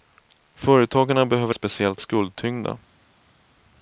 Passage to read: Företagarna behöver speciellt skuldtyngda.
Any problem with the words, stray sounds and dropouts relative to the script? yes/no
no